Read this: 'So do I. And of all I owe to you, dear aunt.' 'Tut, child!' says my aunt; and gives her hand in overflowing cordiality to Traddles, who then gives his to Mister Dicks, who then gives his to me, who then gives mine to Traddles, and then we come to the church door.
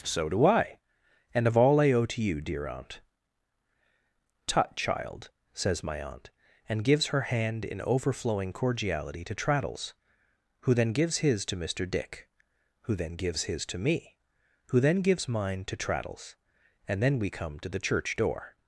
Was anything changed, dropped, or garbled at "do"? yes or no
no